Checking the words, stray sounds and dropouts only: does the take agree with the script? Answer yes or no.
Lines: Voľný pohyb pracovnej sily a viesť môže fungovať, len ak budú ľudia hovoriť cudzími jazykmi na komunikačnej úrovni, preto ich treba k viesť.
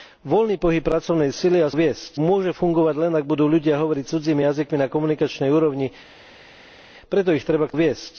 yes